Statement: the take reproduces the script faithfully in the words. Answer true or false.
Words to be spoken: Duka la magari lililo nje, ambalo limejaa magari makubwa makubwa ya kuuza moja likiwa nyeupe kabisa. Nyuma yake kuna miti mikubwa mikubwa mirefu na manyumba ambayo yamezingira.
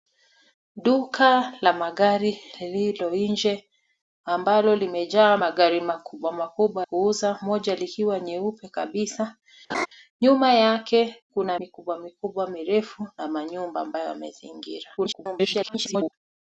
false